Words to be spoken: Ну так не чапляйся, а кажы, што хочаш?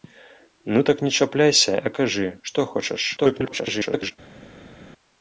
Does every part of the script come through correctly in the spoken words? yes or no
no